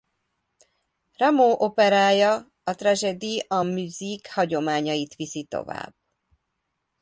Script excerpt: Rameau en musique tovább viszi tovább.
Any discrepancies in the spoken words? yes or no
yes